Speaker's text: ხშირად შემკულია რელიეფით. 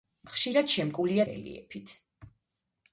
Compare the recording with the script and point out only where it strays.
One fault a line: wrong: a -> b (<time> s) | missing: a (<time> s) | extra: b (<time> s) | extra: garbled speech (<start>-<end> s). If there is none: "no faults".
no faults